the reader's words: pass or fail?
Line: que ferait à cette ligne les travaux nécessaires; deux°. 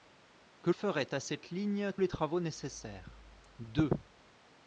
pass